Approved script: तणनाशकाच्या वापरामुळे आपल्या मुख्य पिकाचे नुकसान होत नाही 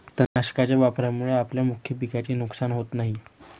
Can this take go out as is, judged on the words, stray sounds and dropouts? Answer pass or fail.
fail